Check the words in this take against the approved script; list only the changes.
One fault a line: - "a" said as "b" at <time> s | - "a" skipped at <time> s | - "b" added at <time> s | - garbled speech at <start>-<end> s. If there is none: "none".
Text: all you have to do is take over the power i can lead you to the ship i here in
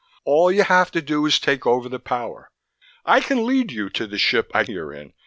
none